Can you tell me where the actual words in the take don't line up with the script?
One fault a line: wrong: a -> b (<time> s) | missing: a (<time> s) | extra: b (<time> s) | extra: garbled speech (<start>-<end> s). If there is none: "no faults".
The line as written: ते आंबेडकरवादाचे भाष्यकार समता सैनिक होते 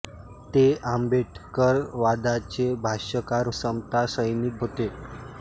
no faults